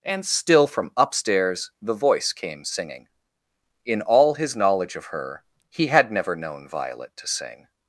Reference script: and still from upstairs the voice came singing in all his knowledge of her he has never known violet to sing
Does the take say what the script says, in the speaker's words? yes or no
no